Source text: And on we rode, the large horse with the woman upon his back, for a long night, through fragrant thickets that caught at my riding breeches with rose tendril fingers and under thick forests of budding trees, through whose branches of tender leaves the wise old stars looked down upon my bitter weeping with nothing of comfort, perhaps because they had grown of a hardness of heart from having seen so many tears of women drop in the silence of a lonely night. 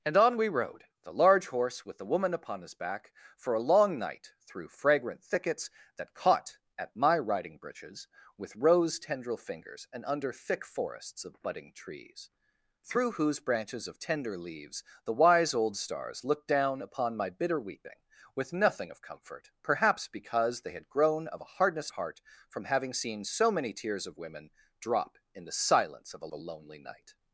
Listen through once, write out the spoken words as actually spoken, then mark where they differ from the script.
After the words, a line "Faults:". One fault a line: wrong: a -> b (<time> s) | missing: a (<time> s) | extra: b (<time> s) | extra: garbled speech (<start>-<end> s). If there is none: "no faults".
And on we rode, the large horse with the woman upon his back, for a long night, through fragrant thickets that caught at my riding breeches with rose tendril fingers and under thick forests of budding trees, through whose branches of tender leaves the wise old stars looked down upon my bitter weeping with nothing of comfort, perhaps because they had grown of a hardness heart from having seen so many tears of women drop in the silence of a a lonely night.
Faults:
missing: of (21.9 s)
extra: a (26.3 s)